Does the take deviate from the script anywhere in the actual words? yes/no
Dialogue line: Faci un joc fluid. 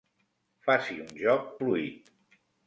no